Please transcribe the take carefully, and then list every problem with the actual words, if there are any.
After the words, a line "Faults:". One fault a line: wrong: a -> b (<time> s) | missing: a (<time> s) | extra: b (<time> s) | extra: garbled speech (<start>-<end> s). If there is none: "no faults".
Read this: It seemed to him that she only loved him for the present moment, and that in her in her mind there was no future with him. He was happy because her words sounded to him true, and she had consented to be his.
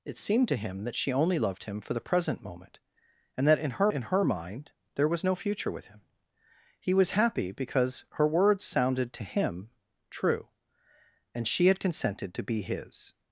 It seemed to him that she only loved him for the present moment, and that in her in her mind there was no future with him. He was happy because her words sounded to him true, and she had consented to be his.
Faults:
no faults